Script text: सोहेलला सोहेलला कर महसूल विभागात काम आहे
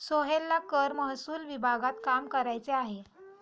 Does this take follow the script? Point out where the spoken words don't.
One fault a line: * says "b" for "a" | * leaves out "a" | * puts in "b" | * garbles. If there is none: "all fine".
* leaves out "सोहेलला"
* puts in "करायचे"